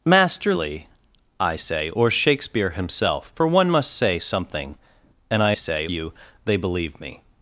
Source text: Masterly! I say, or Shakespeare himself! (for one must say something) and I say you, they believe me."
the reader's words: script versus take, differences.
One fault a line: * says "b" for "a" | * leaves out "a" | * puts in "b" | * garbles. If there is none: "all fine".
all fine